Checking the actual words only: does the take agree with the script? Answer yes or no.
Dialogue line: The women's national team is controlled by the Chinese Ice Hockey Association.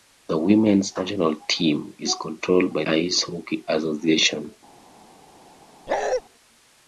no